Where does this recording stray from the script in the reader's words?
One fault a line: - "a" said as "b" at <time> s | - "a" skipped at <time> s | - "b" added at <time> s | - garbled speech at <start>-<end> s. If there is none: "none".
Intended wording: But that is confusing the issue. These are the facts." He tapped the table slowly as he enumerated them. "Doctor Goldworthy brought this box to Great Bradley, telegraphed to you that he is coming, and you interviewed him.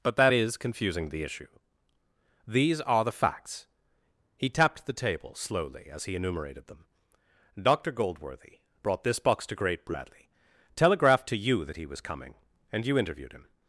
- "is" said as "was" at 11.8 s